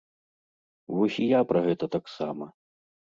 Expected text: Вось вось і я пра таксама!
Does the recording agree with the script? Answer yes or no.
no